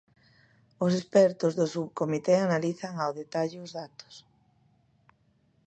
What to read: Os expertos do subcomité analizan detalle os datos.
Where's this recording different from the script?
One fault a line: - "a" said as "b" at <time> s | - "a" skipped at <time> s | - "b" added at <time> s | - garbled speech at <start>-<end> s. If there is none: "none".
- "ao" added at 3.0 s